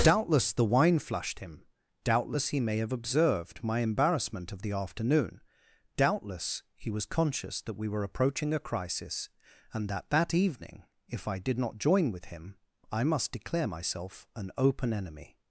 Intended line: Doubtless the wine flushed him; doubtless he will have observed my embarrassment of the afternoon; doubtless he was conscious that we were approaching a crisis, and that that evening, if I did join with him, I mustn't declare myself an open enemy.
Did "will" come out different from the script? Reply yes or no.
yes